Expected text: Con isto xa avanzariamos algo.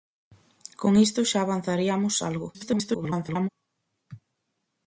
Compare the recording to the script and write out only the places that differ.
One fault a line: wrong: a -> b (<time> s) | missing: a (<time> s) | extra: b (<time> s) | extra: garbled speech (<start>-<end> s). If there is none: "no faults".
extra: garbled speech (2.5-3.5 s)